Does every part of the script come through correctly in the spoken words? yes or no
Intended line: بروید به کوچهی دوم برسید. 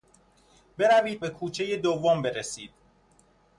yes